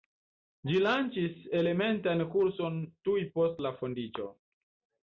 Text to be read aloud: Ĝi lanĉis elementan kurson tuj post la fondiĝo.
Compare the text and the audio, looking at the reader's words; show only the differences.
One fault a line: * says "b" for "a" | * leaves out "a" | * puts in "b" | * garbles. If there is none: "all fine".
all fine